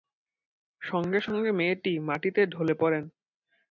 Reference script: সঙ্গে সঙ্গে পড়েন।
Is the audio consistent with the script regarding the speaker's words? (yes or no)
no